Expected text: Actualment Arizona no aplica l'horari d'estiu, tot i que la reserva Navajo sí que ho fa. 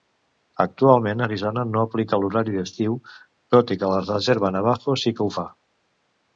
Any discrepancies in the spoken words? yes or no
no